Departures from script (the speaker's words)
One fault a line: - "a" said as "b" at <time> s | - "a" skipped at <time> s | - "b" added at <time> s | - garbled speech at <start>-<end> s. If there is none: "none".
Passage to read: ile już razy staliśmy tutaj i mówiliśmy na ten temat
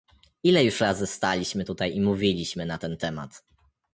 none